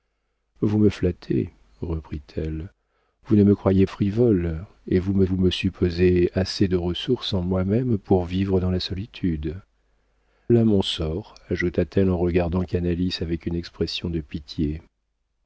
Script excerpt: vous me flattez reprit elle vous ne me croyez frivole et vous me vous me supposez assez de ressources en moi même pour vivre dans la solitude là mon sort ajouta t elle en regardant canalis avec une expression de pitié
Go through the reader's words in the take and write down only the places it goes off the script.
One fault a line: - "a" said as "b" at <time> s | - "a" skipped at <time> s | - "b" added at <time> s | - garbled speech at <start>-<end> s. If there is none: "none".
none